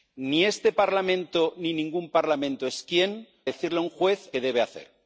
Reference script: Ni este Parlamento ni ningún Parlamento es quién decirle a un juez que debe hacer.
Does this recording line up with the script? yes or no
yes